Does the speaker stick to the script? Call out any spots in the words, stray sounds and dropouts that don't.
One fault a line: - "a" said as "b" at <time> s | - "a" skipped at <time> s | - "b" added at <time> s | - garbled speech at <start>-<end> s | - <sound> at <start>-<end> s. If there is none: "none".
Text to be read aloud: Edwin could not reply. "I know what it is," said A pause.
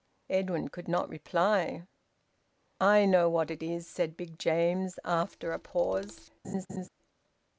- "Big James after" added at 4.2 s
- laugh at 6.4-6.9 s